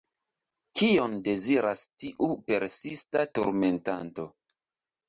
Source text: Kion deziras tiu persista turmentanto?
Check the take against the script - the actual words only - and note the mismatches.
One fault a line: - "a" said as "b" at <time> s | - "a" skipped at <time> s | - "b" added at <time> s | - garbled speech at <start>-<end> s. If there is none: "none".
none